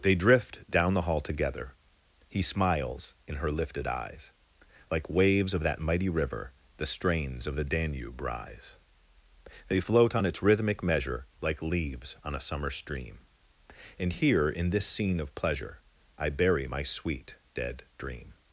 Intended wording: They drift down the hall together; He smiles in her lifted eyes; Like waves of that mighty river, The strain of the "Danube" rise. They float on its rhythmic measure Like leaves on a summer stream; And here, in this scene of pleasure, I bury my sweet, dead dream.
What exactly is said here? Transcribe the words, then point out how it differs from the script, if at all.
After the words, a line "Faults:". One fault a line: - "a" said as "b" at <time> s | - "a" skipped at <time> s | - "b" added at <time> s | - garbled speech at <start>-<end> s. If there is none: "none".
They drift down the hall together; He smiles in her lifted eyes; Like waves of that mighty river, The strains of the "Danube" rise. They float on its rhythmic measure Like leaves on a summer stream; And here, in this scene of pleasure, I bury my sweet, dead dream.
Faults:
- "strain" said as "strains" at 6.9 s